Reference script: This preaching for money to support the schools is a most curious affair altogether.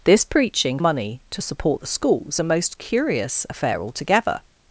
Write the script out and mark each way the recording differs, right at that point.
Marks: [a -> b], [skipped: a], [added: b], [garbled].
This preaching [skipped: for] money to support the schools [skipped: is] a most curious affair altogether.